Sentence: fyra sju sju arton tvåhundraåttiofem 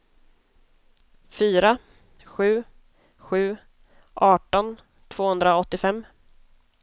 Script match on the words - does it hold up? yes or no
yes